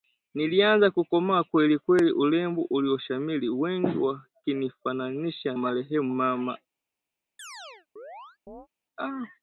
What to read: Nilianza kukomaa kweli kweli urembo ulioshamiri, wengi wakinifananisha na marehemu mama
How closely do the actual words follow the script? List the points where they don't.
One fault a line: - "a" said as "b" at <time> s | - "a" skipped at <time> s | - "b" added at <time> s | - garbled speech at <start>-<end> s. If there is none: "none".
- "na" skipped at 5.6 s